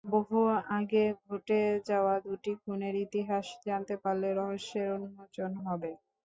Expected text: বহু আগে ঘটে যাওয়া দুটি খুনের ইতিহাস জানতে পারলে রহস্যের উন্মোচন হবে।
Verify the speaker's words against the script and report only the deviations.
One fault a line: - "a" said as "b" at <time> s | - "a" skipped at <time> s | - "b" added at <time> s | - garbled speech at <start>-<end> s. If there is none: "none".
none